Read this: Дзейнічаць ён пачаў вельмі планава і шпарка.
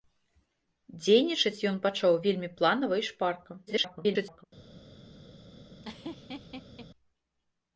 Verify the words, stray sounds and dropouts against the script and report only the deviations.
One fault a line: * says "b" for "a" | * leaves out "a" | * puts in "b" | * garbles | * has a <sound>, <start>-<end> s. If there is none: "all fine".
* garbles
* has a laugh, 5.8-6.9 s